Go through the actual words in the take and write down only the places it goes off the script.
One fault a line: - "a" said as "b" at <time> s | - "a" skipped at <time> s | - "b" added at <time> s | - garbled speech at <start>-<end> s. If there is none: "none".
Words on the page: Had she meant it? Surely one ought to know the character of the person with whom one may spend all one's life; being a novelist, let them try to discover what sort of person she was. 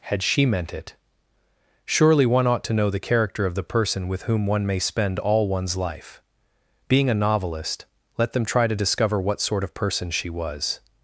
none